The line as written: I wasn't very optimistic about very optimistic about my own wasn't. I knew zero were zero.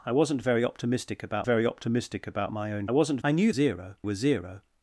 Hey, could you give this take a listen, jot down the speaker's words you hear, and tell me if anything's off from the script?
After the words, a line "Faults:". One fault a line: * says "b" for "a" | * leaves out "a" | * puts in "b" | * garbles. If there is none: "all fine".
I wasn't very optimistic about very optimistic about my own wasn't. I knew zero were zero.
Faults:
all fine